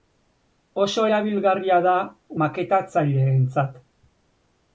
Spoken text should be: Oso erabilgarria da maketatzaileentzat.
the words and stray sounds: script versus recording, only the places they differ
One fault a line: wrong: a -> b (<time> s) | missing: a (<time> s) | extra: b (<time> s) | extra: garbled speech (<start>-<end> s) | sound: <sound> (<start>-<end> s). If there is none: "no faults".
no faults